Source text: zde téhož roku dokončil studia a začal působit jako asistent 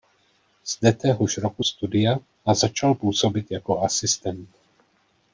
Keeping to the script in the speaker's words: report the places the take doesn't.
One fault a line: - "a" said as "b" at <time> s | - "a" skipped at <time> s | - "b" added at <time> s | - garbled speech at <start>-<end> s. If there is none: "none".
- "dokončil" skipped at 1.6 s